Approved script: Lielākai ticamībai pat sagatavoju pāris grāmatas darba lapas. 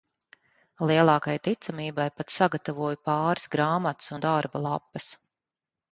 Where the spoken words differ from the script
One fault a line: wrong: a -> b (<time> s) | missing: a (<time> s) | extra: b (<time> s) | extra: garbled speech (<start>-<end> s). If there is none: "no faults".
extra: un (4.1 s)